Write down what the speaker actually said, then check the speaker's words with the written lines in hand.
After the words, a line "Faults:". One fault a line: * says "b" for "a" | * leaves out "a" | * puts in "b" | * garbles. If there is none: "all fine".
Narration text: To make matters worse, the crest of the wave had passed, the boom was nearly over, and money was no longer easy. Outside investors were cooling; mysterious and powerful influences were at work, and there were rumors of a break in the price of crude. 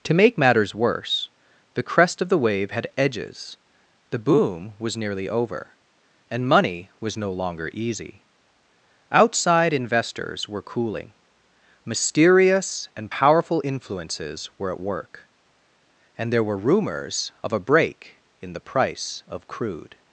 To make matters worse, the crest of the wave had edges, the boom was nearly over, and money was no longer easy. Outside investors were cooling; mysterious and powerful influences were at work, and there were rumors of a break in the price of crude.
Faults:
* says "edges" for "passed"